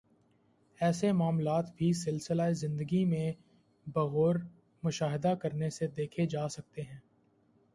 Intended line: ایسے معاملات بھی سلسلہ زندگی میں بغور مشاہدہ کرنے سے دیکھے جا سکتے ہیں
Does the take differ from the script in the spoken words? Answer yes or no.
no